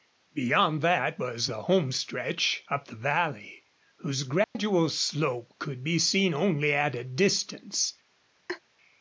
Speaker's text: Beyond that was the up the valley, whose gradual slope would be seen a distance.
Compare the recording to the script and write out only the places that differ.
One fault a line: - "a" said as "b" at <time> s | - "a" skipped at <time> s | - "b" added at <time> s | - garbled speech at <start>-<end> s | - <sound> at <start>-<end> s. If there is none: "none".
- "home stretch" added at 1.6 s
- dropout at 4.4-4.6 s
- "would" said as "could" at 5.6 s
- "only at" added at 6.3 s
- laugh at 8.5-8.6 s